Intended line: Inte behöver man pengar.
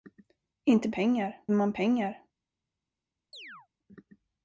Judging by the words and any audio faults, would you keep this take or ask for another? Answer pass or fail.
fail